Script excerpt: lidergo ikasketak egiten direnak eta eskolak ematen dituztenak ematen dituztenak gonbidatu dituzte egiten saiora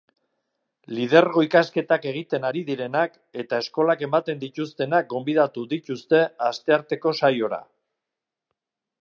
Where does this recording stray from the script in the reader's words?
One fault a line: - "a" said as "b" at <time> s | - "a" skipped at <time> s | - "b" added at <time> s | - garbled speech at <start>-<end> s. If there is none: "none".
- "ari" added at 2.5 s
- "ematen dituztenak" skipped at 5.1 s
- "egiten" said as "astearteko" at 6.5 s